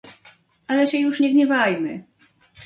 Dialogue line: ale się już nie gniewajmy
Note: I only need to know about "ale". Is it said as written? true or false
true